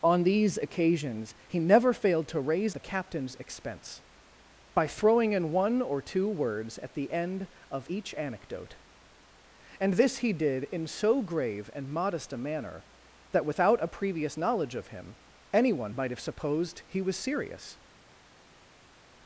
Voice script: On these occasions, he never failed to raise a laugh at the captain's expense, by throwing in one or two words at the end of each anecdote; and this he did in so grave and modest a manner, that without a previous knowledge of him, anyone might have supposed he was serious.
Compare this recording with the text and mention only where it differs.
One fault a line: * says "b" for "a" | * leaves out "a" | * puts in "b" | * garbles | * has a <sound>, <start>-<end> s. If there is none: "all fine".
* leaves out "a laugh at"